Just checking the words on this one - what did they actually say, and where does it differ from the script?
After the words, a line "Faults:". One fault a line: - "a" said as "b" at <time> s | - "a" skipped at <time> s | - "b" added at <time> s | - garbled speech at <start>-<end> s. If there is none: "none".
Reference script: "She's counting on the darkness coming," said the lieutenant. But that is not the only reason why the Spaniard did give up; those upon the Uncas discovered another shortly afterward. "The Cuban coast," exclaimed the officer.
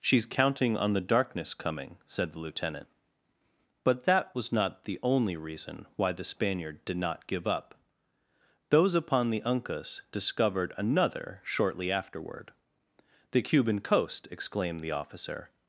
"She's counting on the darkness coming," said the lieutenant. But that was not the only reason why the Spaniard did not give up; those upon the Uncas discovered another shortly afterward. "The Cuban coast," exclaimed the officer.
Faults:
- "is" said as "was" at 4.3 s
- "not" added at 7.0 s